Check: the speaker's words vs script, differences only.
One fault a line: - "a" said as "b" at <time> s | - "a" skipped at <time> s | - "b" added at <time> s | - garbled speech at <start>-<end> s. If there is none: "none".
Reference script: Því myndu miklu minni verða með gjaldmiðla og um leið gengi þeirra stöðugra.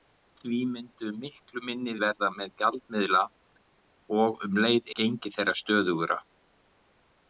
none